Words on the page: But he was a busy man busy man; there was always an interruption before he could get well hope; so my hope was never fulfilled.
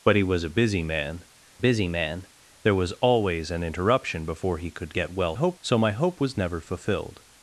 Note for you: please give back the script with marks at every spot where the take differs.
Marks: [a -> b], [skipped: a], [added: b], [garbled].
But he was a busy man busy man; there was always an interruption before he could get well hope; so my hope was never fulfilled.